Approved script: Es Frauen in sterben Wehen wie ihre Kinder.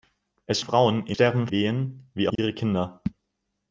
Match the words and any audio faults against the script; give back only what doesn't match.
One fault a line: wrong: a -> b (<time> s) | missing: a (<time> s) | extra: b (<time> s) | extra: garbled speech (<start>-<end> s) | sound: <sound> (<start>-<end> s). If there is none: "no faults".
sound: dropout (2.3-2.4 s)